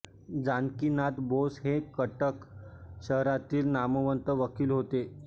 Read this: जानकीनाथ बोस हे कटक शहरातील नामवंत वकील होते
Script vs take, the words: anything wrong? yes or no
no